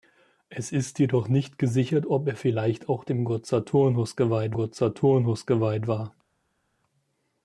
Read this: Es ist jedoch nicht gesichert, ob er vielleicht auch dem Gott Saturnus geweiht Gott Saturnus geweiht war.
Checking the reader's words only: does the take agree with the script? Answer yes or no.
yes